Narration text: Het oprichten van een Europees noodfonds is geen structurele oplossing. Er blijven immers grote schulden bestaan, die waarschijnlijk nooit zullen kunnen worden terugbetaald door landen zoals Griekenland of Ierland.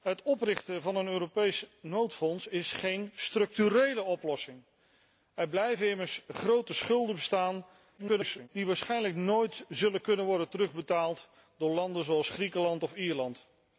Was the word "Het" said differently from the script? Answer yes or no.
no